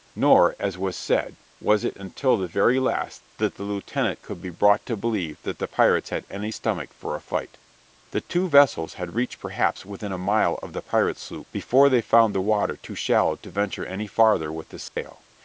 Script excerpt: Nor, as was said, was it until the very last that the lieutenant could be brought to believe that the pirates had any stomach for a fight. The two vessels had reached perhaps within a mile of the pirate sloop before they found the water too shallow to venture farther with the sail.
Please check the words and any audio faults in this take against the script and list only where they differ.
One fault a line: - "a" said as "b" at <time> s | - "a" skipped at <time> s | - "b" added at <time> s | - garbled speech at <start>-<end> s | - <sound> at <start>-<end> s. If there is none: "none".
- "any" added at 13.9 s
- dropout at 14.9-15.0 s